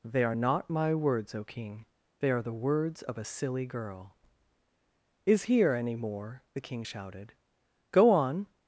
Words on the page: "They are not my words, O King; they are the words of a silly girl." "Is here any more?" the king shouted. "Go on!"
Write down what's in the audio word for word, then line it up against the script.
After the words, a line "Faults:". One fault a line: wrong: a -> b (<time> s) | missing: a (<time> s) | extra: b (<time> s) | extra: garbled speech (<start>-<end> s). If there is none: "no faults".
"They are not my words, O King; they are the words of a silly girl." "Is here any more?" the king shouted. "Go on!"
Faults:
no faults